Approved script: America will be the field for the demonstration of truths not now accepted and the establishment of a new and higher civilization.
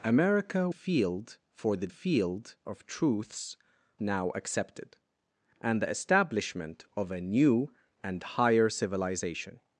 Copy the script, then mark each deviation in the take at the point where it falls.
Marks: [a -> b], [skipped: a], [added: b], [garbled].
America [skipped: will be the] field for the [demonstration -> field] of truths [skipped: not] now accepted and the establishment of a new and higher civilization.